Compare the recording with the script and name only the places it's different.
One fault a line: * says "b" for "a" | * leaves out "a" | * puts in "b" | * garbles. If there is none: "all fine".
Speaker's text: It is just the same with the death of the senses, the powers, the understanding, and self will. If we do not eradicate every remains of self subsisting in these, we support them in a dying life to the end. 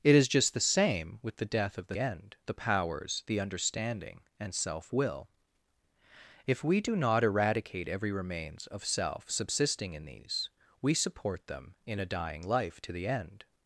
* says "end" for "senses"